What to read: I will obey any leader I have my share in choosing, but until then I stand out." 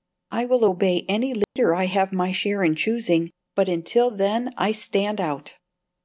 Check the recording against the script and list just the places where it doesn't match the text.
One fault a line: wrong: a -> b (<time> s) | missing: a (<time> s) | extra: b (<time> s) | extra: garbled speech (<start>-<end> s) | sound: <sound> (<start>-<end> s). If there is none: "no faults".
sound: dropout (1.4-1.6 s)